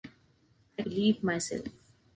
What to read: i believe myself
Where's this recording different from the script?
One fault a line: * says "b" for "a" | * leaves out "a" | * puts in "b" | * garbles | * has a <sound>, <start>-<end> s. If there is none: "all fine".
all fine